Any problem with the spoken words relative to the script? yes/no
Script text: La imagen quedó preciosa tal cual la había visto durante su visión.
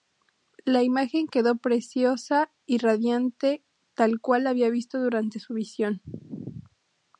yes